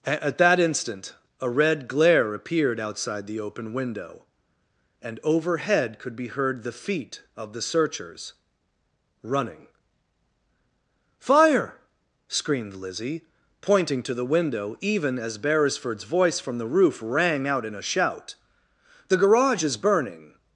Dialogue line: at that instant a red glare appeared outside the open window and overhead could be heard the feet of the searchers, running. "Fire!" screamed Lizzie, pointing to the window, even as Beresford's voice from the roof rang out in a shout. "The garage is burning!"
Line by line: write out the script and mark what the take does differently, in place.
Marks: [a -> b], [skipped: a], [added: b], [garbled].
at that instant a red glare appeared outside the open window and overhead could be heard the feet of the searchers, running. "Fire!" screamed Lizzie, pointing to the window, even as Beresford's voice from the roof rang out in a shout. "The garage is burning!"